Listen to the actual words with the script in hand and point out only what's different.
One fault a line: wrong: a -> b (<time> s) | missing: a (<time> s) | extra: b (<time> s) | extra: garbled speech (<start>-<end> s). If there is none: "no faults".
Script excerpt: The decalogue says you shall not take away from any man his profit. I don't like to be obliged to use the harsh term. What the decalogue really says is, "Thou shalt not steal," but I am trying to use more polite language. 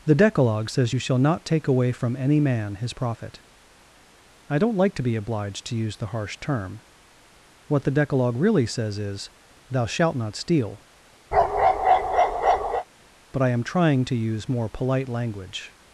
no faults